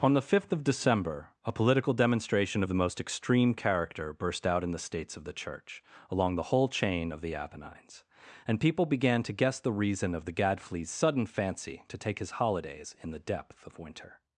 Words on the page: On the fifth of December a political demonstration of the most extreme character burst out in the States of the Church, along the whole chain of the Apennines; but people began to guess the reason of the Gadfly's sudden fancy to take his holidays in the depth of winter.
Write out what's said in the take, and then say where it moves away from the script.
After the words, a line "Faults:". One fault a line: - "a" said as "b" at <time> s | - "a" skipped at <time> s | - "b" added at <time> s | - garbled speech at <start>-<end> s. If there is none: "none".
On the fifth of December a political demonstration of the most extreme character burst out in the States of the Church, along the whole chain of the Apennines; and people began to guess the reason of the Gadfly's sudden fancy to take his holidays in the depth of winter.
Faults:
- "but" said as "and" at 8.5 s